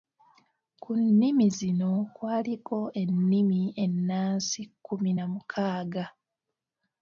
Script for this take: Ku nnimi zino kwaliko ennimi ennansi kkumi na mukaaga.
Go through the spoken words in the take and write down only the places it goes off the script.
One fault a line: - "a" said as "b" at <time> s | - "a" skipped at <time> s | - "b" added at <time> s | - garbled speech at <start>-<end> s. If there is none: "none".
none